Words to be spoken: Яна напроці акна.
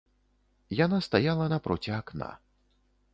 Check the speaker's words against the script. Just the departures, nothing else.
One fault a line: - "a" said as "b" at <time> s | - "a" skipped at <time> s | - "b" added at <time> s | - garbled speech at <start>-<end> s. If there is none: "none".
- "стаяла" added at 1.1 s